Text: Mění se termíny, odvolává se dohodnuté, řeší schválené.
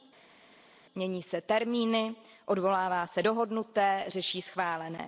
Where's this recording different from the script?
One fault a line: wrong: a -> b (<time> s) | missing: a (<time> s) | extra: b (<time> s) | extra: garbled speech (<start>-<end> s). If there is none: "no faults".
no faults